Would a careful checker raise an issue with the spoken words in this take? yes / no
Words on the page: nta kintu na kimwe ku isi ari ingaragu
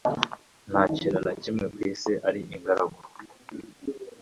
no